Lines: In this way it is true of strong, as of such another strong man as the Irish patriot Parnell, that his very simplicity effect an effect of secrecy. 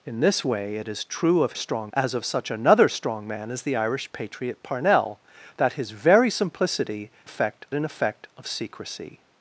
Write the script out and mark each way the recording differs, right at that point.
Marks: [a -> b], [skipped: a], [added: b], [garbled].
In this way it is true of strong, as of such another strong man as the Irish patriot Parnell, that his very simplicity effect an effect of secrecy.